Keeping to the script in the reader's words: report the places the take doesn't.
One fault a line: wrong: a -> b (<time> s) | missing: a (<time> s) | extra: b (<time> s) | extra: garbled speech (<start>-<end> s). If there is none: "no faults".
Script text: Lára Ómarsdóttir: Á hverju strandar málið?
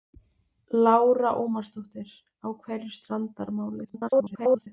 extra: garbled speech (3.8-4.7 s)